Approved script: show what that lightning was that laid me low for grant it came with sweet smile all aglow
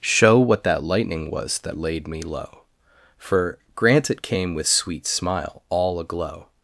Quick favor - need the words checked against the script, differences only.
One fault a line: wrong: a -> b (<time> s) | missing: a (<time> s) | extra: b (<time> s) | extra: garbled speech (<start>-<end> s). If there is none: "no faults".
no faults